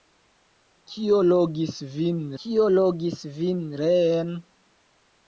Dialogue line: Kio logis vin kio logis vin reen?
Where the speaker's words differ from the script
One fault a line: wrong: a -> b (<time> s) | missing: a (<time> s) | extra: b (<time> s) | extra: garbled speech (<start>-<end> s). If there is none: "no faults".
no faults